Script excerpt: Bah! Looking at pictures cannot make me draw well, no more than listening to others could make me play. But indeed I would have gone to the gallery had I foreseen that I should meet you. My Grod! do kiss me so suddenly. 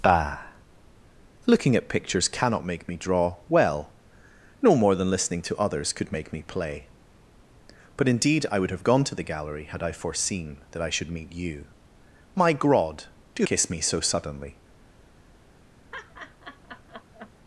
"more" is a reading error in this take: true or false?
false